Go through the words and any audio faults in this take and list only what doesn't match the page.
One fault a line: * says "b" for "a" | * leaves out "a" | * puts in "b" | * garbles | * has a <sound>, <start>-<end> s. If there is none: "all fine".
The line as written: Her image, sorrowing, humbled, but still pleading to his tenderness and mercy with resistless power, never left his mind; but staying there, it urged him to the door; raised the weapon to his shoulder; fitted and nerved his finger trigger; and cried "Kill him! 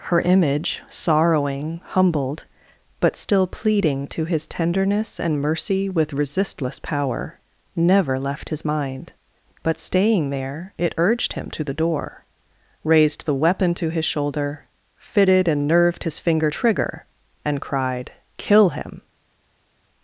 all fine